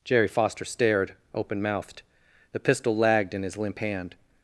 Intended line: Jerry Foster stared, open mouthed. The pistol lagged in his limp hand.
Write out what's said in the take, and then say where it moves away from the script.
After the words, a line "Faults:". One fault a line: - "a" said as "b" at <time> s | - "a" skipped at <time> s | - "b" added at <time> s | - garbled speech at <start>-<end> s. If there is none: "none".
Jerry Foster stared, open mouthed. The pistol lagged in his limp hand.
Faults:
none